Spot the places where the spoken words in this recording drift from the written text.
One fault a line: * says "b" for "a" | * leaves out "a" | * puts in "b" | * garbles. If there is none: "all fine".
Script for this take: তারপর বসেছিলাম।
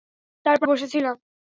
all fine